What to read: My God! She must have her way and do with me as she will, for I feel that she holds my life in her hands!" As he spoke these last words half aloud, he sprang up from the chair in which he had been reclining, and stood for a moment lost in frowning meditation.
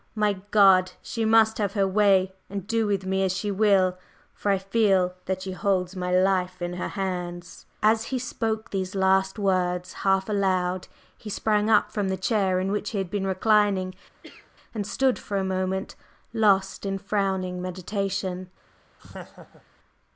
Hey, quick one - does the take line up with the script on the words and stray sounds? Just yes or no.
no